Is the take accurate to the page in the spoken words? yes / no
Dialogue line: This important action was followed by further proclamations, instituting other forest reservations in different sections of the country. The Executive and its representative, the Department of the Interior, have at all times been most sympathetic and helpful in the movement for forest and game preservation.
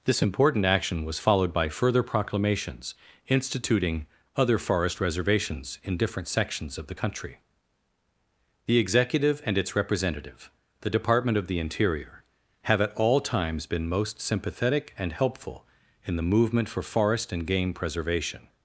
yes